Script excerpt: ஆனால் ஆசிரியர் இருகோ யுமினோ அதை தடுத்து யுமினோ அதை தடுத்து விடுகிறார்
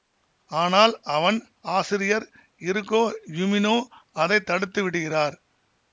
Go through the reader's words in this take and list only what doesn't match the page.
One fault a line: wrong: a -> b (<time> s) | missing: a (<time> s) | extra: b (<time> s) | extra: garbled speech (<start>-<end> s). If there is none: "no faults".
extra: அவன் (1.1 s)
missing: யுமினோ அதை தடுத்து (4.8 s)